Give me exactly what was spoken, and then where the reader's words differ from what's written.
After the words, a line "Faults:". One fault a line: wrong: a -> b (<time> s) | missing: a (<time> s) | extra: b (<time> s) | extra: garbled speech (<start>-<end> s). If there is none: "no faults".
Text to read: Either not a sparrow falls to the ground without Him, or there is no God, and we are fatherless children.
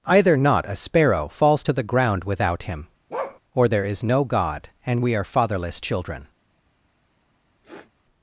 Either not a sparrow falls to the ground without Him, or there is no God, and we are fatherless children.
Faults:
no faults